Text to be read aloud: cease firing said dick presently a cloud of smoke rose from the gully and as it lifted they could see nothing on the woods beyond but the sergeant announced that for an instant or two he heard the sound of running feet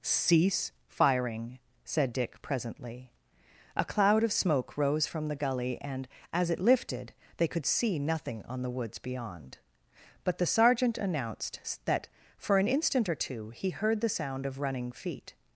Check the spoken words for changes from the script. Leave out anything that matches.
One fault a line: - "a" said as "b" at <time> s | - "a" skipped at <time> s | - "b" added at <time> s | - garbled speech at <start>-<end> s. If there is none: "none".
none